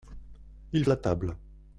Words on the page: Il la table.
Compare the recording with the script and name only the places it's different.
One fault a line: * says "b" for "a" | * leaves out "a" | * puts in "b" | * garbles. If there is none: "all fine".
all fine